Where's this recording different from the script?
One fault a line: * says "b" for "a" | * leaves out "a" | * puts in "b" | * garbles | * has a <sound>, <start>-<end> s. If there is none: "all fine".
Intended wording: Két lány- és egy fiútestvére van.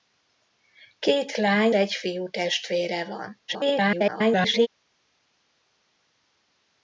* leaves out "és"
* garbles